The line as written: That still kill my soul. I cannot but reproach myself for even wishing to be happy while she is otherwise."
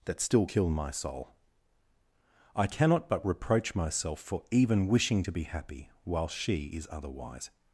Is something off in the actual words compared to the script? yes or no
no